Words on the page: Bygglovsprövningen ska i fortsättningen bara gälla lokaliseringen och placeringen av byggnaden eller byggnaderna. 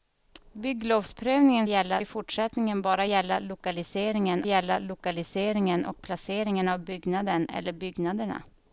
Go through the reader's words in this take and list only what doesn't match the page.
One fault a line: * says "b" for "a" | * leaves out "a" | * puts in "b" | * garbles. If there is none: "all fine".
* says "gälla" for "ska"
* puts in "gälla lokaliseringen"